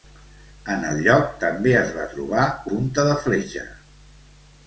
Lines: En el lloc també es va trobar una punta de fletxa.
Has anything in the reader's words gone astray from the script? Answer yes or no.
yes